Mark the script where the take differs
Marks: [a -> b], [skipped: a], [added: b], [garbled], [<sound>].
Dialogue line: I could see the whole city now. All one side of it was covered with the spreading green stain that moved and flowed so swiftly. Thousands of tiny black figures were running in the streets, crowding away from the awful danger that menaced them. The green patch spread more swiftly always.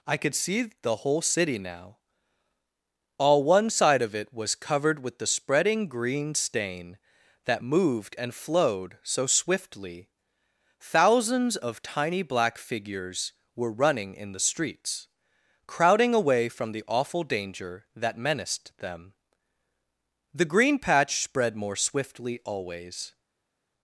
I could see the whole city now. All one side of it was covered with the spreading green stain that moved and flowed so swiftly. Thousands of tiny black figures were running in the streets, crowding away from the awful danger that menaced them. The green patch spread more swiftly always.